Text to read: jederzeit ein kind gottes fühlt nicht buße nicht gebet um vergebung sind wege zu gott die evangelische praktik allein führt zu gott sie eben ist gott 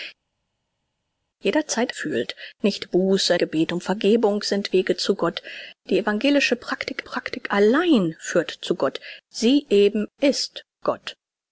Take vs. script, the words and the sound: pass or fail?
fail